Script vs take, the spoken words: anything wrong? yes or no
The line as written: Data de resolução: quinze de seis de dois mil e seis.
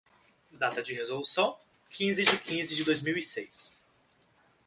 yes